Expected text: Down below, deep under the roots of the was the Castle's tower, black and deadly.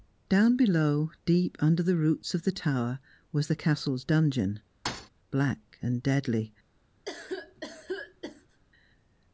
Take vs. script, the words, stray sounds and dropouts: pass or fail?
fail